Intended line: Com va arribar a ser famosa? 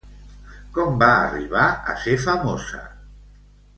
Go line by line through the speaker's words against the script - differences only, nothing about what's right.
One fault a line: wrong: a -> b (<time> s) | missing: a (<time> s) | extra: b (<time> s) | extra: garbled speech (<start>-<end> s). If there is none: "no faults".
no faults